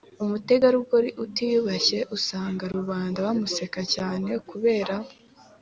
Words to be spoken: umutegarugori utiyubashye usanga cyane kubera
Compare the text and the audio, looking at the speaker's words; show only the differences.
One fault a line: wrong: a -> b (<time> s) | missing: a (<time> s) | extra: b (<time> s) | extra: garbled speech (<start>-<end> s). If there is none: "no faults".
extra: rubanda bamuseka (2.7 s)